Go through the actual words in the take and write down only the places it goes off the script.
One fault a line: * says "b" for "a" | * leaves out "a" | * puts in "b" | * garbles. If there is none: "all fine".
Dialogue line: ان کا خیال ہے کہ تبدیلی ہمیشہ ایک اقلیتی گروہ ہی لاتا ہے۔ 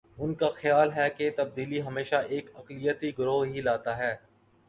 all fine